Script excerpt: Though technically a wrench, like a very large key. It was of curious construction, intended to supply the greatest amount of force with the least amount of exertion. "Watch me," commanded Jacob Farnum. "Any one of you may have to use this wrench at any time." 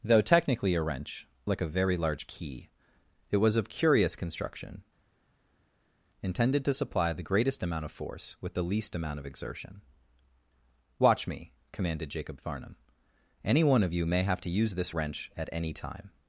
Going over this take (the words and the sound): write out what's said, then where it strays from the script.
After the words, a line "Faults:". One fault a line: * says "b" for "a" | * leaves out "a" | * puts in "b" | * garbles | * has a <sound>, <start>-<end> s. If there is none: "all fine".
Though technically a wrench, like a very large key. It was of curious construction, intended to supply the greatest amount of force with the least amount of exertion. "Watch me," commanded Jacob Farnum. "Any one of you may have to use this wrench at any time."
Faults:
all fine